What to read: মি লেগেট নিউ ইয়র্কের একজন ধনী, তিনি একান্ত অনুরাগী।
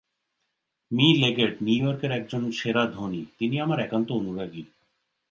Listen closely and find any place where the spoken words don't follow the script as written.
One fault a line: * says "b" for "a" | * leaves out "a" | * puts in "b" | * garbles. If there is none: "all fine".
* puts in "সেরা"
* puts in "আমার"